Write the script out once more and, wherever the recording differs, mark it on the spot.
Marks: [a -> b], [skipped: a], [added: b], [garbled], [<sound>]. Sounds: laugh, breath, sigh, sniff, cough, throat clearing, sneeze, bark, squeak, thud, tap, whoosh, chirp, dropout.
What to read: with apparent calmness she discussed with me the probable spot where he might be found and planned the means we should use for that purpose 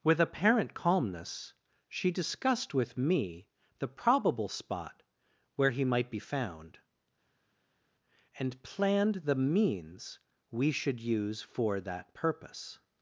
with apparent calmness she discussed with me the probable spot where he might be found and planned the means we should use for that purpose